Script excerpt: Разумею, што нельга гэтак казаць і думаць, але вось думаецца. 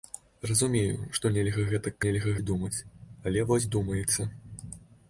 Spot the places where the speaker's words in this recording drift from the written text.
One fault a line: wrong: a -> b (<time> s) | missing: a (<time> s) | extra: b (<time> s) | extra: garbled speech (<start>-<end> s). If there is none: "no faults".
wrong: казаць -> нельга (2.0 s)